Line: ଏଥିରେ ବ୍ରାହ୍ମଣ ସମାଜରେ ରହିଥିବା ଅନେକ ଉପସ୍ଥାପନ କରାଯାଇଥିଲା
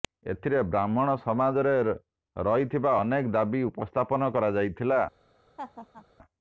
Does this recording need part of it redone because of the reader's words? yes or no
yes